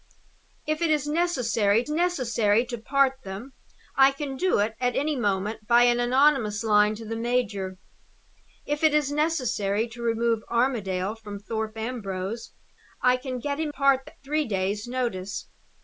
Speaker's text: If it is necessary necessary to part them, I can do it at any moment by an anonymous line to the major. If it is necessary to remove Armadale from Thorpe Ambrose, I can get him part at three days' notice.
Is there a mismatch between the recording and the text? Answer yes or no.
no